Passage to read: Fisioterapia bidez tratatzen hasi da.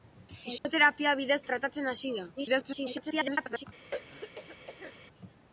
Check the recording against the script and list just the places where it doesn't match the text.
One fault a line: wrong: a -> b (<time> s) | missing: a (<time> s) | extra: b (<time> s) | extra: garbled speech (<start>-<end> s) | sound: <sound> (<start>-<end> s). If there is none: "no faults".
sound: dropout (0.6-0.6 s)
extra: garbled speech (2.4-3.6 s)
sound: throat clearing (3.9-4.9 s)